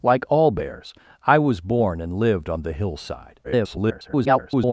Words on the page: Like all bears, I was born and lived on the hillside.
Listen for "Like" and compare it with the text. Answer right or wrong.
right